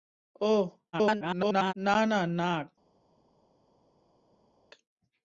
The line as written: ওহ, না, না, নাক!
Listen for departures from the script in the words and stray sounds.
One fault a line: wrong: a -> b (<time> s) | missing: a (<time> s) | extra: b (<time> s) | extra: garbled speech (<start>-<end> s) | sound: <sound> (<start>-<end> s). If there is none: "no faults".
extra: garbled speech (0.9-1.7 s)